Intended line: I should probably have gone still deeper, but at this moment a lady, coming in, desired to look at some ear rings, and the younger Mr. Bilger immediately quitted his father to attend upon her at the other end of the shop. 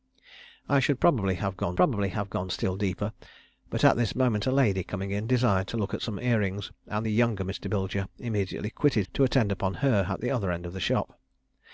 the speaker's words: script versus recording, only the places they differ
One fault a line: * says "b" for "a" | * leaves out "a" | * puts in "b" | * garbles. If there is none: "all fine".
* puts in "probably have gone"
* leaves out "his father"